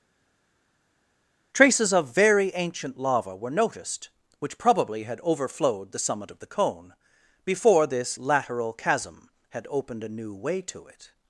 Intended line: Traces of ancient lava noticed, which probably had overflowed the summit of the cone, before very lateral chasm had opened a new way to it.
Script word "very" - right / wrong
wrong